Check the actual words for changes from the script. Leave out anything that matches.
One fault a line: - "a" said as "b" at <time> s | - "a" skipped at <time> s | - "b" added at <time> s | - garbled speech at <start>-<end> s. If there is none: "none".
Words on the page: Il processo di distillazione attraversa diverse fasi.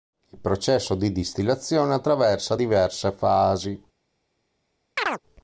none